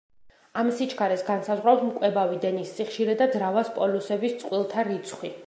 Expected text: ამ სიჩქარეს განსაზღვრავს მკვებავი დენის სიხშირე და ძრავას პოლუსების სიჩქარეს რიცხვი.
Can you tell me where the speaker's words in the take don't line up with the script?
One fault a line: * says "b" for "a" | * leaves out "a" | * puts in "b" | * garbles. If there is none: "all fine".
* says "წყვილთა" for "სიჩქარეს"